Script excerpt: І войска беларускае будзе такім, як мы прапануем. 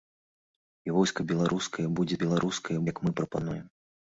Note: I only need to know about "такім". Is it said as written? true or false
false